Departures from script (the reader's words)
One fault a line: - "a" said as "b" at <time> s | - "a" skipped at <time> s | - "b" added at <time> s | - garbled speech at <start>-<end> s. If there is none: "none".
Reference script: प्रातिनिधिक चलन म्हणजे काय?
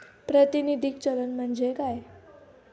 none